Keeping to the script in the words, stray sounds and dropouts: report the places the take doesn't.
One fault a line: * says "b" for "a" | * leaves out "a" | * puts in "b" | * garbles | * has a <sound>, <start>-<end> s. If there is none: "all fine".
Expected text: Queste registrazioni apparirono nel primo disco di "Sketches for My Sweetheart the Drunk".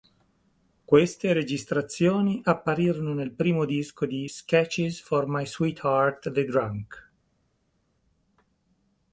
all fine